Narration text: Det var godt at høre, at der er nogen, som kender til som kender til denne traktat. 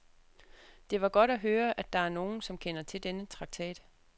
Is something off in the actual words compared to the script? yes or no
yes